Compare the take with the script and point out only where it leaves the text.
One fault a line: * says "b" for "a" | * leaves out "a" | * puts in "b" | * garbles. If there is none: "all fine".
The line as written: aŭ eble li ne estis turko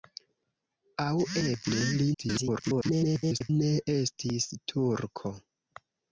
* garbles